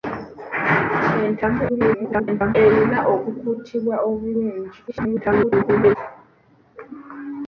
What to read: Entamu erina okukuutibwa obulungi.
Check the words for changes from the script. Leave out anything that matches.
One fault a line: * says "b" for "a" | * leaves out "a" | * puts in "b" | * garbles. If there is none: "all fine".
* garbles
* garbles